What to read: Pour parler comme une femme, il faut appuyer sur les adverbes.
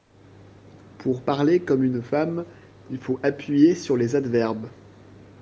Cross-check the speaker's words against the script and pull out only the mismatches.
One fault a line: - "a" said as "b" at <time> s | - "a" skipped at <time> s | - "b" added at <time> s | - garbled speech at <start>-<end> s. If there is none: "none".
none